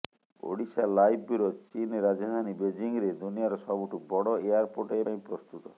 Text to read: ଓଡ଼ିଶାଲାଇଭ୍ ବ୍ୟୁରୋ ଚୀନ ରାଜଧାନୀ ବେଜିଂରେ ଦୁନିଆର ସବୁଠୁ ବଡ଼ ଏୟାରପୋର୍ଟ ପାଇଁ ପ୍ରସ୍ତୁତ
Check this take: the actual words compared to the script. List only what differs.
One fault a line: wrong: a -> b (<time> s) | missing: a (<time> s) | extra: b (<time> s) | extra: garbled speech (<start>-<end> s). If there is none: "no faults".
no faults